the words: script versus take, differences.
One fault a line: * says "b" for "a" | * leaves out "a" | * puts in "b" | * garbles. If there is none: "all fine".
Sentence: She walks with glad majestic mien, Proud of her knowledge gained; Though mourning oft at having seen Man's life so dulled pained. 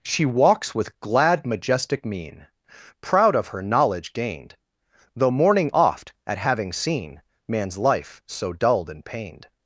* puts in "and"